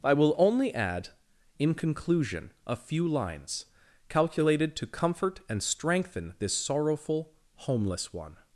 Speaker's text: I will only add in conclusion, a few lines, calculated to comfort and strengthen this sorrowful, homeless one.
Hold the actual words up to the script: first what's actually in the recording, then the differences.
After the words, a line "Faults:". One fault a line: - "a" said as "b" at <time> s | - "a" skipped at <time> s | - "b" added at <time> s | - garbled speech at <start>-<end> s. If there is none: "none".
I will only add in conclusion, a few lines, calculated to comfort and strengthen this sorrowful, homeless one.
Faults:
none